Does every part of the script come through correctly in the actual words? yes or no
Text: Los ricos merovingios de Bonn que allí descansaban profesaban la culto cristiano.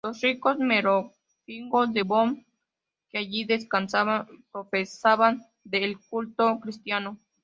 no